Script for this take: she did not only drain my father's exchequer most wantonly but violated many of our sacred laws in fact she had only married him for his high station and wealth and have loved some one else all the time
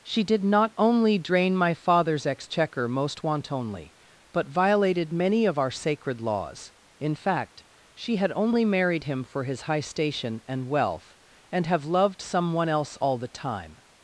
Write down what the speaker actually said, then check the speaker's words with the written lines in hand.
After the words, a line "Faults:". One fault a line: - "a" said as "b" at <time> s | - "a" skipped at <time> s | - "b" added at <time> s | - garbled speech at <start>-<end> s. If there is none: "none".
she did not only drain my father's exchequer most wantonly but violated many of our sacred laws in fact she had only married him for his high station and wealth and have loved some one else all the time
Faults:
none